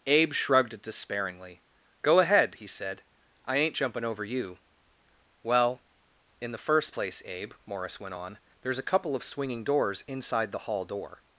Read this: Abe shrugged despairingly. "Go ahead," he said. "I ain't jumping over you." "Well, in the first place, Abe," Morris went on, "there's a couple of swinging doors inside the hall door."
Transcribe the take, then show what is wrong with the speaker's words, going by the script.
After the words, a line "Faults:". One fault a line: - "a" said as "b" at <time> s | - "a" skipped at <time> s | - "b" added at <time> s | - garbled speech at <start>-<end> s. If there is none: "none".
Abe shrugged despairingly. "Go ahead," he said. "I ain't jumping over you." "Well, in the first place, Abe," Morris went on, "there's a couple of swinging doors inside the hall door."
Faults:
none